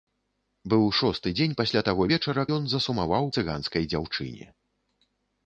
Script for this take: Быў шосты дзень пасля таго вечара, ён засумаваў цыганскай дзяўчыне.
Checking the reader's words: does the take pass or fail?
pass